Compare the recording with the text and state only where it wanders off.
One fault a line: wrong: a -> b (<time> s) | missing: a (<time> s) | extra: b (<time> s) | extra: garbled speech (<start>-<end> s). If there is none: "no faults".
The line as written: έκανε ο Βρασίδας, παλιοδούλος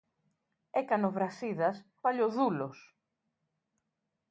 no faults